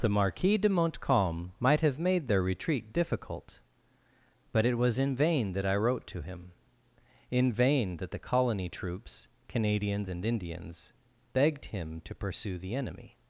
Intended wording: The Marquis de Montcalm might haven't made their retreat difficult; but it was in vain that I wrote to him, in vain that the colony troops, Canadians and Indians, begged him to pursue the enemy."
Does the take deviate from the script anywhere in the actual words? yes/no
yes